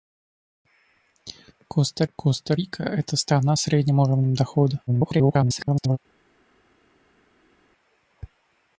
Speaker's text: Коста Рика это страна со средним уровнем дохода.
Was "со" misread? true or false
true